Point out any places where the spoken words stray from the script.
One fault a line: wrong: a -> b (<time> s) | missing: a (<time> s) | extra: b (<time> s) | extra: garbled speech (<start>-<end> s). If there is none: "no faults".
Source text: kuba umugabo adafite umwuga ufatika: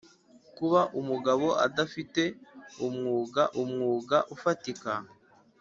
extra: umwuga (3.6 s)